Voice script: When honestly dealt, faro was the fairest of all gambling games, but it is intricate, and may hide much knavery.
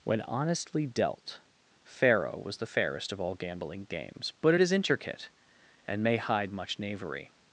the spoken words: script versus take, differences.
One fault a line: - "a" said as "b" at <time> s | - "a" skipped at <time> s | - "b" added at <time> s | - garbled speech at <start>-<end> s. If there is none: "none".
none